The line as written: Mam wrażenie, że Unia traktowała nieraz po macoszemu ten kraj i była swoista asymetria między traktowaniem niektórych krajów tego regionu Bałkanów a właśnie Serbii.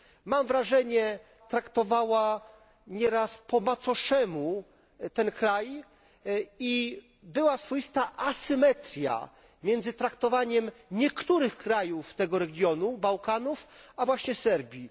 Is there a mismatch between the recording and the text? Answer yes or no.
yes